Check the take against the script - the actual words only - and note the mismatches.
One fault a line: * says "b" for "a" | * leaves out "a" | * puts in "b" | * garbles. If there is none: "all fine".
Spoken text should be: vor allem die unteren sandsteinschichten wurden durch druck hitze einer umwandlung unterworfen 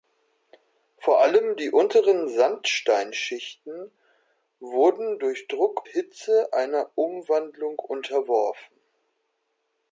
all fine